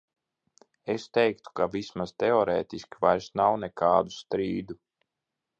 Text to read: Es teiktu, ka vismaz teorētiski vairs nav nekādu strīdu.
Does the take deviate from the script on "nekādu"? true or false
false